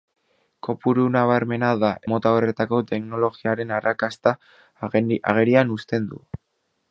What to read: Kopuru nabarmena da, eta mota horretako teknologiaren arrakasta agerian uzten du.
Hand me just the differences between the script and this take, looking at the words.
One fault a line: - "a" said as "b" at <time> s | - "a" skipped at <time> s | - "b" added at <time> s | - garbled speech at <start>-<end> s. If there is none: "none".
- "eta" skipped at 1.9 s